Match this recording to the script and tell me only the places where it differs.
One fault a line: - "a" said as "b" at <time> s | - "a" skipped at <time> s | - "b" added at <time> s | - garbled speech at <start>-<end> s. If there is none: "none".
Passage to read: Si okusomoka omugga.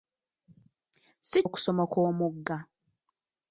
none